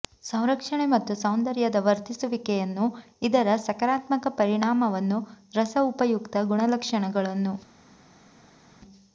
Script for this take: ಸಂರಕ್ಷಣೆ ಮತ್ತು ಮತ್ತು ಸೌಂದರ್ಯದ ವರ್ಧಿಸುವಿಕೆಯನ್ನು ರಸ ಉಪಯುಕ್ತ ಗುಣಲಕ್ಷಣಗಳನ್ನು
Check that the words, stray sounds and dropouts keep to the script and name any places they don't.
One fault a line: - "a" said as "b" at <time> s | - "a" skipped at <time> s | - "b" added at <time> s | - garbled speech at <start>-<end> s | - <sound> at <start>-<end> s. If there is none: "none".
- "ಮತ್ತು" skipped at 1.1 s
- "ಇದರ ಸಕಾರಾತ್ಮಕ ಪರಿಣಾಮವನ್ನು" added at 3.2 s